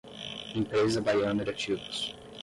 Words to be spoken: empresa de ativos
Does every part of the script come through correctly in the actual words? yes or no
no